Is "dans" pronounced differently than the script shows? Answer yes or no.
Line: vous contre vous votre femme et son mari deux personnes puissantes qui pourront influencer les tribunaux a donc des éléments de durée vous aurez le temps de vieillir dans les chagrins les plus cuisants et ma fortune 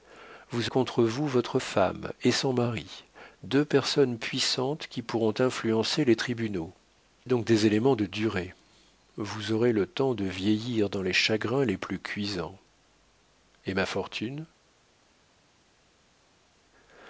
no